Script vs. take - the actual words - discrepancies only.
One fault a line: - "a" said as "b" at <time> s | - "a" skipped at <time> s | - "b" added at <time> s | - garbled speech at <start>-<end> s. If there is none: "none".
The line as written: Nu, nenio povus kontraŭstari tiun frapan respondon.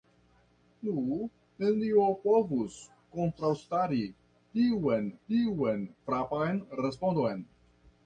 - "tiun" added at 5.3 s